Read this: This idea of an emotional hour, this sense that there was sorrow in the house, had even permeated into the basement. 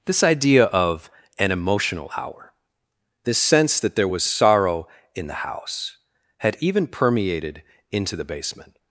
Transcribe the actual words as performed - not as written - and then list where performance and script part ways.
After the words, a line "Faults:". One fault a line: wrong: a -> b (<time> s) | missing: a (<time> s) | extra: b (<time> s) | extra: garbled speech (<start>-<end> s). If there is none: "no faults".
This idea of an emotional hour, this sense that there was sorrow in the house, had even permeated into the basement.
Faults:
no faults